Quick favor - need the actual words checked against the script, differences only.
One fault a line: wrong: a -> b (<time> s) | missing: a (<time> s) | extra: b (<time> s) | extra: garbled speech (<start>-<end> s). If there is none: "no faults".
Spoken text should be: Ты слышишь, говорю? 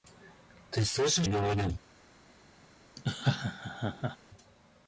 no faults